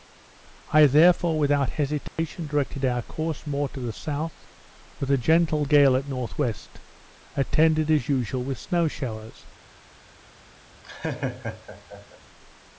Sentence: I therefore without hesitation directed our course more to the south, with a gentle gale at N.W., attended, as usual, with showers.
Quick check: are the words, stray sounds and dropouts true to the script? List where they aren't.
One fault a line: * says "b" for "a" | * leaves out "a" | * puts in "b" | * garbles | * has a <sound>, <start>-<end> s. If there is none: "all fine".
* has a dropout, 2.1-2.2 s
* puts in "snow"
* has a laugh, 10.8-12.2 s